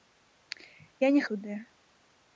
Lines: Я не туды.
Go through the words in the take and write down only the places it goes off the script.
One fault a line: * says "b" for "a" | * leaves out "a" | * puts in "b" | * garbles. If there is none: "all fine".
all fine